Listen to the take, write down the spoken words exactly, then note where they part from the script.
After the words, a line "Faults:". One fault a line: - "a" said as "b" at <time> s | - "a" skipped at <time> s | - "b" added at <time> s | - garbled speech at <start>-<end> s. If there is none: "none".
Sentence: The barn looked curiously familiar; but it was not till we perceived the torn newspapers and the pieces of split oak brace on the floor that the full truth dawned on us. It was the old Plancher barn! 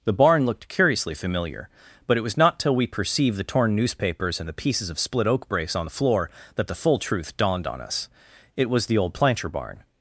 The barn looked curiously familiar; but it was not till we perceived the torn newspapers and the pieces of split oak brace on the floor that the full truth dawned on us. It was the old Plancher barn!
Faults:
none